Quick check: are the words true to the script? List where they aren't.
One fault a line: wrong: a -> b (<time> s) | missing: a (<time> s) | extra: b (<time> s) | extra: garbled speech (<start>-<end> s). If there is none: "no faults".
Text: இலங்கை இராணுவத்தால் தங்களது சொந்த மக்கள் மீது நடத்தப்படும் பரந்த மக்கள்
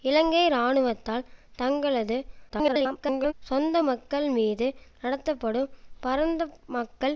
extra: garbled speech (2.5-3.3 s)